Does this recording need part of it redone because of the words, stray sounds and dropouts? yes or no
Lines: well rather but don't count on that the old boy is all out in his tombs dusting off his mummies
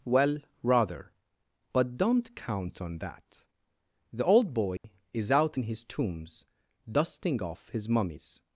yes